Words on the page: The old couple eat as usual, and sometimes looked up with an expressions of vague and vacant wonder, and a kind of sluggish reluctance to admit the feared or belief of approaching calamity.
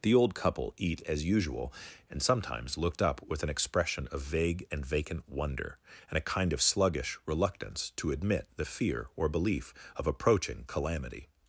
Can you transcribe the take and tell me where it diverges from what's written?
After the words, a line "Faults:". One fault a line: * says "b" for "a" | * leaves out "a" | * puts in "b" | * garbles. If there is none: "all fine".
The old couple eat as usual, and sometimes looked up with an expression of vague and vacant wonder, and a kind of sluggish reluctance to admit the fear or belief of approaching calamity.
Faults:
* says "expression" for "expressions"
* says "fear" for "feared"